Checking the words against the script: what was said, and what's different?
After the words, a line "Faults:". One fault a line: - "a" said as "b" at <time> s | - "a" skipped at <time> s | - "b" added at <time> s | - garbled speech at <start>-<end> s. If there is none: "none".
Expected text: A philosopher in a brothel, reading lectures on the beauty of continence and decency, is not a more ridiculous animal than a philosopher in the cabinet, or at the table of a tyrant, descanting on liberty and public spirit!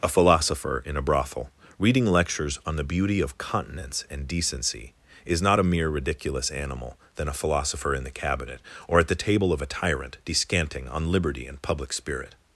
A philosopher in a brothel, reading lectures on the beauty of continence and decency, is not a mere ridiculous animal than a philosopher in the cabinet, or at the table of a tyrant, descanting on liberty and public spirit!
Faults:
- "more" said as "mere" at 5.6 s